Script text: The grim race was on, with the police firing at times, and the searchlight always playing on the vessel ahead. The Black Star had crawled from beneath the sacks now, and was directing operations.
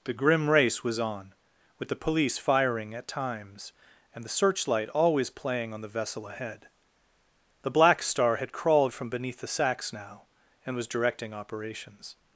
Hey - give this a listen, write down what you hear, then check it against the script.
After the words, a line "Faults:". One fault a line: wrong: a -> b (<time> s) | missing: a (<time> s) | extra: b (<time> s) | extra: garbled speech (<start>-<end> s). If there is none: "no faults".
The grim race was on, with the police firing at times, and the searchlight always playing on the vessel ahead. The Black Star had crawled from beneath the sacks now, and was directing operations.
Faults:
no faults